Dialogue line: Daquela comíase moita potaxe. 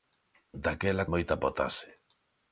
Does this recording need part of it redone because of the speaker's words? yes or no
yes